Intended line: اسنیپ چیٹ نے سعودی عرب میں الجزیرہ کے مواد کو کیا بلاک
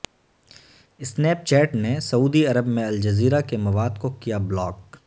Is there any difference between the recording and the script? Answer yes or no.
no